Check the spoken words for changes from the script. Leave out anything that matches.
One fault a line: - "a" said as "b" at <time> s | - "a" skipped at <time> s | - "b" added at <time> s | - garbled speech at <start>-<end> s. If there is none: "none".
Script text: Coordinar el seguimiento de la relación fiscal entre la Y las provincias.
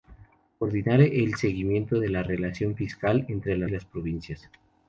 none